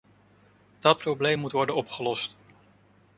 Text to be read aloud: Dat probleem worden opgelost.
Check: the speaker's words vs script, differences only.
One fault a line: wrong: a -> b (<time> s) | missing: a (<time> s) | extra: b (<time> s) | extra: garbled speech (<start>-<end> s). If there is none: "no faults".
extra: moet (1.4 s)